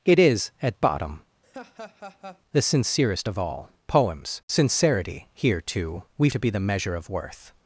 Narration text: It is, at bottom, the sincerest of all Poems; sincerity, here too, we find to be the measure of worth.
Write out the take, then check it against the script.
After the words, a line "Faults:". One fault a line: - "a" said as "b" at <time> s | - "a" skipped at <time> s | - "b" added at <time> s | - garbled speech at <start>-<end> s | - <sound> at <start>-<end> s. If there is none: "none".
It is, at bottom, the sincerest of all Poems; sincerity, here too, we to be the measure of worth.
Faults:
- laugh at 1.4-2.4 s
- "find" skipped at 6.3 s